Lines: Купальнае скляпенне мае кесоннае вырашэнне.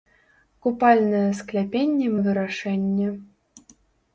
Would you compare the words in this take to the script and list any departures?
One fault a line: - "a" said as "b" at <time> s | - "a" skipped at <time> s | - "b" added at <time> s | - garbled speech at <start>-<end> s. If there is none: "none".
- "мае кесоннае" skipped at 2.1 s